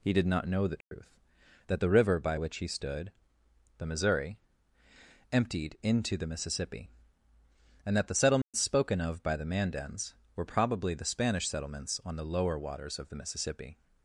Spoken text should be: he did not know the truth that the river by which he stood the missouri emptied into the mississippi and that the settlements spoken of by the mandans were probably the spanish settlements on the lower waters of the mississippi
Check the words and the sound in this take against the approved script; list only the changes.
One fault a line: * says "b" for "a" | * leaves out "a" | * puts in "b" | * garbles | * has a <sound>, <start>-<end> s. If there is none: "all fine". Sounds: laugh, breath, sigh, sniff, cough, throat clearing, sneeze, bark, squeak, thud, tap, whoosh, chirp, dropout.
* has a dropout, 0.8-0.9 s
* has a dropout, 8.4-8.5 s